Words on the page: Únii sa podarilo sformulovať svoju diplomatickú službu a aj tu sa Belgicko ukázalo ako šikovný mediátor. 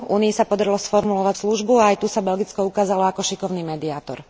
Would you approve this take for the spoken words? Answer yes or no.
no